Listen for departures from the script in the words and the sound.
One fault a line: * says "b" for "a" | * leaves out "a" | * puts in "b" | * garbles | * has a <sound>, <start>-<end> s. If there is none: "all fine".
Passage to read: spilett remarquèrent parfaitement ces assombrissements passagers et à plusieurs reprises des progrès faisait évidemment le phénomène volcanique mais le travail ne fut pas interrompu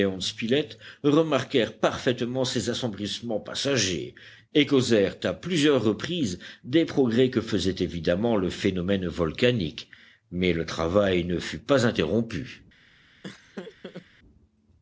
* puts in "causèrent"
* puts in "que"
* has a laugh, 13.2-14.1 s